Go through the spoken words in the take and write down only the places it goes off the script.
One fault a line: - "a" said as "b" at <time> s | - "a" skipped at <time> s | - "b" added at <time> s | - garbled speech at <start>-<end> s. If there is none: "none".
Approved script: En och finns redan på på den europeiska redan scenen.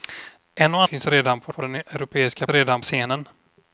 none